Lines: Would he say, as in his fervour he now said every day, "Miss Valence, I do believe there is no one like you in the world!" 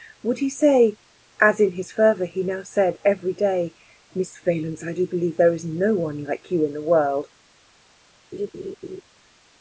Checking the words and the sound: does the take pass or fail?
fail